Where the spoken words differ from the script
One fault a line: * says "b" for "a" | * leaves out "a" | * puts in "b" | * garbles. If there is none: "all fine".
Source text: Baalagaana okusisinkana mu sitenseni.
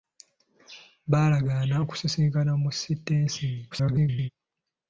* garbles